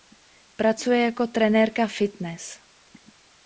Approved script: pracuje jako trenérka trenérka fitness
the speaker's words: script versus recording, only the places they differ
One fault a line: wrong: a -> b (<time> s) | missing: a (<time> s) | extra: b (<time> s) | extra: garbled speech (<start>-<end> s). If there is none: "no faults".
missing: trenérka (1.9 s)